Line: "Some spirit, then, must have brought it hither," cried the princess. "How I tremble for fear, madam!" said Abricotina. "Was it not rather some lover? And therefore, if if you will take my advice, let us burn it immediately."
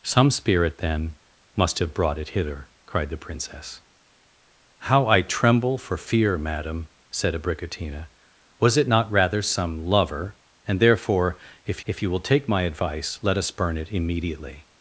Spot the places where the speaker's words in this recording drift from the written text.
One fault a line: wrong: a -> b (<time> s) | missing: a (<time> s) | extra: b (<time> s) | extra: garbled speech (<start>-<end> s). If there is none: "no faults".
no faults